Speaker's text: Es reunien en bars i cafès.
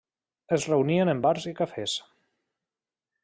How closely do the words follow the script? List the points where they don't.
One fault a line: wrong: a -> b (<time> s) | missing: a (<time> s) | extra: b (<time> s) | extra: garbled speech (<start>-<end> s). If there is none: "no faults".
no faults